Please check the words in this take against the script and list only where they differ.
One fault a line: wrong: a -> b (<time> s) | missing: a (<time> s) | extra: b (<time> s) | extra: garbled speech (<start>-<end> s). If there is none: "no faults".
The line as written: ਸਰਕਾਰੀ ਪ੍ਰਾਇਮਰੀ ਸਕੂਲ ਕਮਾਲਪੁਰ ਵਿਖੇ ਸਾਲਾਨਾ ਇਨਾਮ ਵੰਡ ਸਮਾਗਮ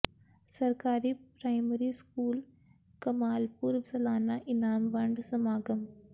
missing: ਵਿਖੇ (3.8 s)